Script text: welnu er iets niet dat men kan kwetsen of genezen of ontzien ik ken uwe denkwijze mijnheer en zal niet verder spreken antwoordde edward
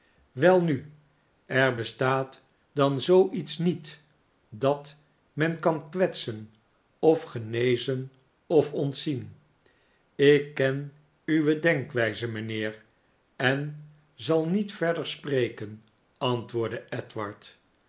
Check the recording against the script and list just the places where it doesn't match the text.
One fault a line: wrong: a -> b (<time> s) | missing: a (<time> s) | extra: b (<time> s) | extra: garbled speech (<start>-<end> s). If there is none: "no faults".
extra: bestaat dan zoo (1.7 s)